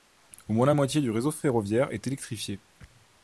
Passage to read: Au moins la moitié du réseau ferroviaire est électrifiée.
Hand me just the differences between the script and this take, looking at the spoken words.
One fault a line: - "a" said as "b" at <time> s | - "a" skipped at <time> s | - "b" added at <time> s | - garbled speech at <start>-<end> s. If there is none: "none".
none